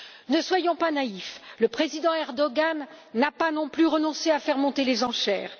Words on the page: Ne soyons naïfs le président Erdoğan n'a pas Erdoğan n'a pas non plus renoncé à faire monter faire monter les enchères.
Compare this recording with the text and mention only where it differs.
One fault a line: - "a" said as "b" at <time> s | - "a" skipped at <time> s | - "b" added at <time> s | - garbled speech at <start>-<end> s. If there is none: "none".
- "pas" added at 0.8 s
- "Erdoğan n'a pas" skipped at 3.5 s
- "faire monter" skipped at 4.8 s